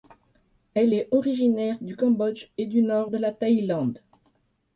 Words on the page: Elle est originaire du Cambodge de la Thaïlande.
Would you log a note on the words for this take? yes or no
yes